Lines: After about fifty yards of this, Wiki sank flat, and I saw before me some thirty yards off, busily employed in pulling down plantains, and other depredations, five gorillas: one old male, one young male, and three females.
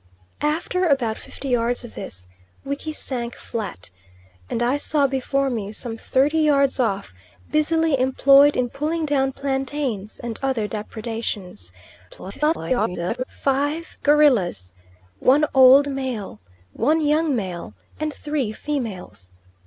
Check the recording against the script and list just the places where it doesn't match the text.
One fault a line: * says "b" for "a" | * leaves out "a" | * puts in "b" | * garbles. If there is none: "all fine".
* garbles